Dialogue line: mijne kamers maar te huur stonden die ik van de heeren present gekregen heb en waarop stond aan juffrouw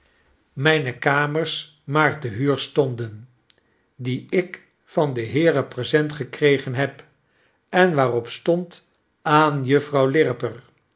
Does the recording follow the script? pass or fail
pass